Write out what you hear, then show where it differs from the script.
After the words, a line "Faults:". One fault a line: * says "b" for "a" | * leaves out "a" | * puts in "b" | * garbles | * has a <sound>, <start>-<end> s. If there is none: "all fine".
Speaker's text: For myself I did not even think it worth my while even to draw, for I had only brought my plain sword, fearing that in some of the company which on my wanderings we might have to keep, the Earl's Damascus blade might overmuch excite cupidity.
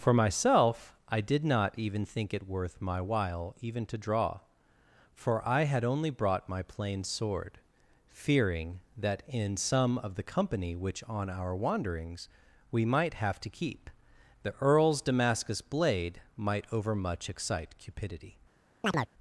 For myself I did not even think it worth my while even to draw, for I had only brought my plain sword, fearing that in some of the company which on our wanderings we might have to keep, the Earl's Damascus blade might overmuch excite cupidity.
Faults:
* says "our" for "my"
* has a chirp, 18.8-19.1 s